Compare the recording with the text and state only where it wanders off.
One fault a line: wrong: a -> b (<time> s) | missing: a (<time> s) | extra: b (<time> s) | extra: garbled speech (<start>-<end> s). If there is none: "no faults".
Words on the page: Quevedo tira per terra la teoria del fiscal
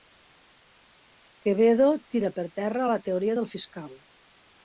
no faults